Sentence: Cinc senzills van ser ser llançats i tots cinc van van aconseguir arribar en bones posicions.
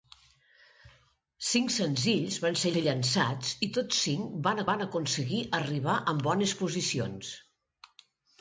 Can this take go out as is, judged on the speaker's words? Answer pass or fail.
pass